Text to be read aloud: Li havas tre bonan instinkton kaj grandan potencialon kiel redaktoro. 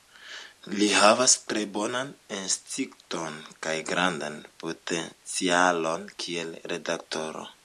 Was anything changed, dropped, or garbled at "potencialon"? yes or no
no